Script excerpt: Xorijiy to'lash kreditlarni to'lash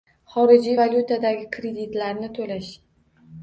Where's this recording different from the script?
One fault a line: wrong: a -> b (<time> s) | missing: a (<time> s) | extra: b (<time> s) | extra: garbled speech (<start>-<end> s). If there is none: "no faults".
wrong: to'lash -> valyutadagi (0.8 s)